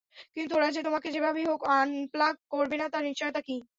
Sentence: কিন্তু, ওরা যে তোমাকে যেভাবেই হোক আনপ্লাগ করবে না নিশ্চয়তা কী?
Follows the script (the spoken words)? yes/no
no